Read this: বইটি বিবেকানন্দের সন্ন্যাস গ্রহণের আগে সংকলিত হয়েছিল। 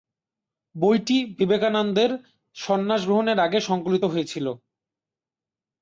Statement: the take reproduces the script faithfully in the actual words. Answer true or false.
true